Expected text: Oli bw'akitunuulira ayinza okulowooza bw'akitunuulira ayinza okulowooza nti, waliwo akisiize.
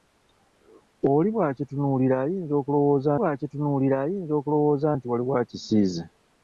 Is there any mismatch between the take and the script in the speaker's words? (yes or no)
no